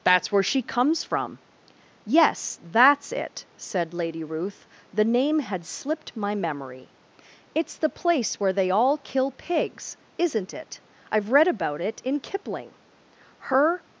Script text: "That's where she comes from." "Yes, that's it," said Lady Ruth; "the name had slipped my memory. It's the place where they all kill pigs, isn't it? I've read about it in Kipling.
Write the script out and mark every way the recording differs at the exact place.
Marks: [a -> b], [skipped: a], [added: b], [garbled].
"That's where she comes from." "Yes, that's it," said Lady Ruth; "the name had slipped my memory. It's the place where they all kill pigs, isn't it? I've read about it in Kipling. [added: Her]